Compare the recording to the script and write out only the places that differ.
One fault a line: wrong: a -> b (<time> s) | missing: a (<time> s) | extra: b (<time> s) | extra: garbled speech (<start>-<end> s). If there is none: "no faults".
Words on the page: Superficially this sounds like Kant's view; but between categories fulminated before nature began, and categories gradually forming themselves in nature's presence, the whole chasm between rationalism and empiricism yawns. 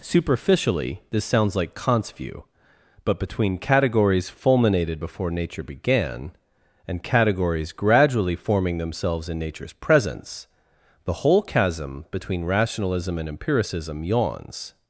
no faults